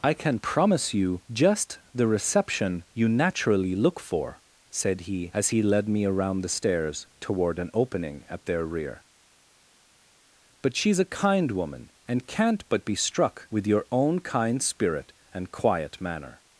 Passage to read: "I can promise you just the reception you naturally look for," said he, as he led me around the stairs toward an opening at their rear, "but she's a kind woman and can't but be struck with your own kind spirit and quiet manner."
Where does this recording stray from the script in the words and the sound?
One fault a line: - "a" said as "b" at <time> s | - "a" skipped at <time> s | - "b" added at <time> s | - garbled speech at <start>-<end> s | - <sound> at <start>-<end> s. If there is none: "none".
none